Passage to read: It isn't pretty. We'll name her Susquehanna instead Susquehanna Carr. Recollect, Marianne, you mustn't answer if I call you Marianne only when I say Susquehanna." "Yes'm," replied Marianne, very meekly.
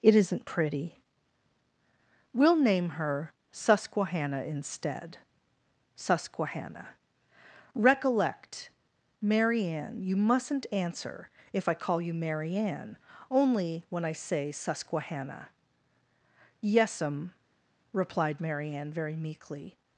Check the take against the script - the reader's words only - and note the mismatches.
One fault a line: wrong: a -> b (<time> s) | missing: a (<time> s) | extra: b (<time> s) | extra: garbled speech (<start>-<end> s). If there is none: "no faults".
missing: Carr (6.9 s)